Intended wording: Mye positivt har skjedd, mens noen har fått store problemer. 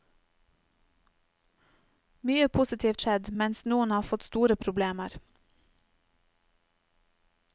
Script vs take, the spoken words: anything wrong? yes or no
yes